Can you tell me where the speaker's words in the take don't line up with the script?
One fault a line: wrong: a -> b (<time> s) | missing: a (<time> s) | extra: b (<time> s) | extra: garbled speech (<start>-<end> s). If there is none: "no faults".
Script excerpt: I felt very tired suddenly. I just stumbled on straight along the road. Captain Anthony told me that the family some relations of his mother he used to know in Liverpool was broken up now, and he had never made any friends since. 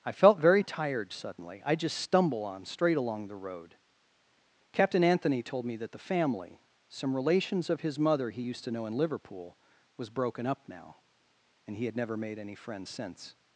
wrong: stumbled -> stumble (2.0 s)